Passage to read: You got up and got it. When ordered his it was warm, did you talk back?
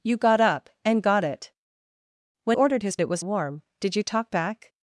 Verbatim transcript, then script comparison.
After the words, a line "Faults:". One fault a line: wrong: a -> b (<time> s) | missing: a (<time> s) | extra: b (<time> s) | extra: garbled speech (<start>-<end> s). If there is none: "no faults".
You got up and got it. When ordered his it was warm, did you talk back?
Faults:
no faults